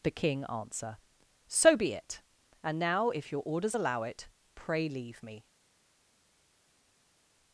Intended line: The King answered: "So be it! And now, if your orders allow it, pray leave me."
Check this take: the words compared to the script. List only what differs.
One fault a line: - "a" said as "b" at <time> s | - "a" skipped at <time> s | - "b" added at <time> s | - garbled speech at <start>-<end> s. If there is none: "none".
- "answered" said as "answer" at 0.5 s